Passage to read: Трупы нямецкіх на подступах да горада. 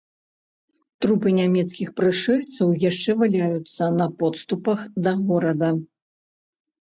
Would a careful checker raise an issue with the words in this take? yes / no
yes